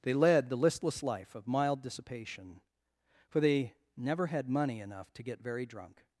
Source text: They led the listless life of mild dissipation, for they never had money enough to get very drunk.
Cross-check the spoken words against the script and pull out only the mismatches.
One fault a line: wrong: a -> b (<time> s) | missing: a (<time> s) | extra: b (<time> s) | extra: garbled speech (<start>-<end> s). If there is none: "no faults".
no faults